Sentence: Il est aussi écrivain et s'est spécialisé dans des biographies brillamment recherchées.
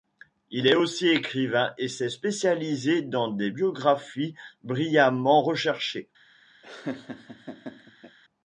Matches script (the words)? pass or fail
pass